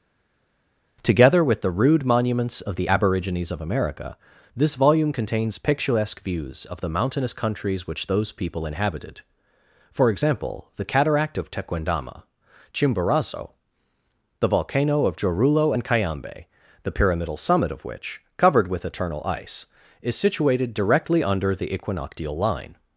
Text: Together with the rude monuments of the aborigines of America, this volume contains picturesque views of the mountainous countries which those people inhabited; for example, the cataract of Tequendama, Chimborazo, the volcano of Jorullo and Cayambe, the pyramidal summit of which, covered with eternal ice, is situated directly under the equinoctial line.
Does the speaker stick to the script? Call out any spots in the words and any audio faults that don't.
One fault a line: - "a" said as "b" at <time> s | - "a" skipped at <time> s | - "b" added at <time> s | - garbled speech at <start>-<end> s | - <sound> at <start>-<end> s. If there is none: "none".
none